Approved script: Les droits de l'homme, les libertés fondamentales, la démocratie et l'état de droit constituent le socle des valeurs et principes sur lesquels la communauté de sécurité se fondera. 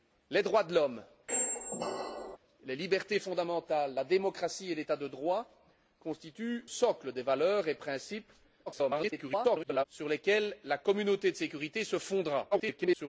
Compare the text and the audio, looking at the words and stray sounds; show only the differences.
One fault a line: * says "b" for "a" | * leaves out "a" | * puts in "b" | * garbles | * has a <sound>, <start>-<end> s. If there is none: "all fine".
* has a squeak, 1.3-2.4 s
* leaves out "le"
* garbles
* garbles